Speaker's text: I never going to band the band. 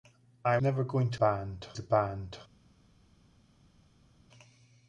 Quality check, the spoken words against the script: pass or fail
pass